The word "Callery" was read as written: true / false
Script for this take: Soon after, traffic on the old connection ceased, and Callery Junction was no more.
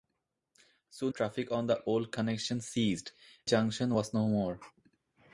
false